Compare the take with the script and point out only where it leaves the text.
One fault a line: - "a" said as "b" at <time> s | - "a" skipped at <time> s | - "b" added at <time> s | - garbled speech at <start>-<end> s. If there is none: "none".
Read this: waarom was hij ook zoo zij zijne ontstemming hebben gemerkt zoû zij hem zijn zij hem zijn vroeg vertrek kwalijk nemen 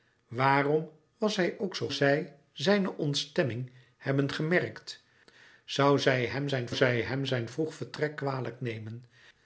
none